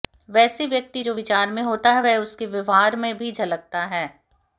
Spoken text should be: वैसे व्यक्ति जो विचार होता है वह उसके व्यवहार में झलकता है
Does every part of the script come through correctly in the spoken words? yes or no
no